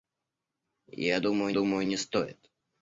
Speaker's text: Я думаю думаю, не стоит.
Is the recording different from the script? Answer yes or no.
no